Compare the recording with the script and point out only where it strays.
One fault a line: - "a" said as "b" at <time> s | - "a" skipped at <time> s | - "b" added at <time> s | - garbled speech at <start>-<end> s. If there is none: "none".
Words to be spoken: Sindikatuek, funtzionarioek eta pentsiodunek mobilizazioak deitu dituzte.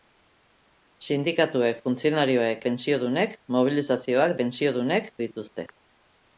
- "eta" skipped at 2.6 s
- "deitu" said as "pentsiodunek" at 4.4 s